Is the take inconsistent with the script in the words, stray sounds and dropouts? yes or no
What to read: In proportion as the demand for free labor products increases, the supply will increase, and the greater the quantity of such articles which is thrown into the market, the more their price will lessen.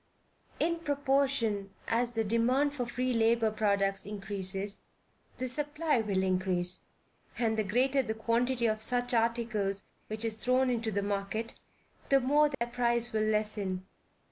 yes